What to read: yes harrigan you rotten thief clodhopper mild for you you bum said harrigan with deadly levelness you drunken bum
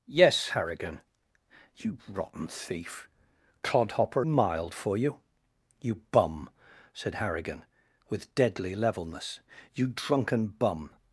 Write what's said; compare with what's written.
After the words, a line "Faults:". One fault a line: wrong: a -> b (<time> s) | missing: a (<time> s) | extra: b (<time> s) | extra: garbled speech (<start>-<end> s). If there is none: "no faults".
yes harrigan you rotten thief clodhopper mild for you you bum said harrigan with deadly levelness you drunken bum
Faults:
no faults